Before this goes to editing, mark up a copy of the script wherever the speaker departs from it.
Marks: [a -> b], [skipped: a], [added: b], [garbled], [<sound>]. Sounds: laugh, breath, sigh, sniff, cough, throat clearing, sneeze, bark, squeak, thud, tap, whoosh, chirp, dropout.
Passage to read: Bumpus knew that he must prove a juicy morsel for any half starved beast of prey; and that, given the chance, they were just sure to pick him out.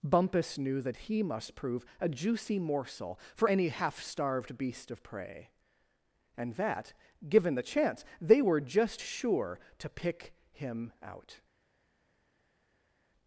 Bumpus knew that he must prove a juicy morsel for any half starved beast of prey; and that, given the chance, they were just sure to pick him out.